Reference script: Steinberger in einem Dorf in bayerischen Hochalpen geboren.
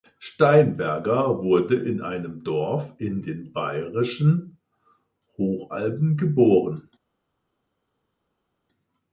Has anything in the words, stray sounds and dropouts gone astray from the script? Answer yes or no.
yes